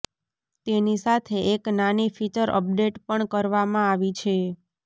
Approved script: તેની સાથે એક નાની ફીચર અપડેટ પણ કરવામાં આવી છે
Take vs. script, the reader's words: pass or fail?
pass